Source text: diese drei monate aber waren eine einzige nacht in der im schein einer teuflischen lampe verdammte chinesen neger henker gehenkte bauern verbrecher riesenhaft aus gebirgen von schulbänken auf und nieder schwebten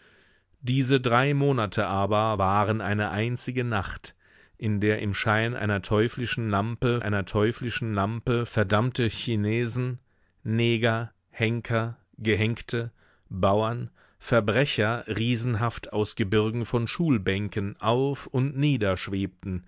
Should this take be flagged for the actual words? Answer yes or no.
yes